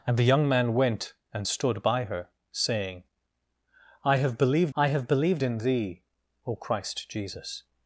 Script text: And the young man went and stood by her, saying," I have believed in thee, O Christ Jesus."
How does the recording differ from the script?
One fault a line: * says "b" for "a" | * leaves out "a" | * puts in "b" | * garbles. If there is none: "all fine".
* puts in "I have believed"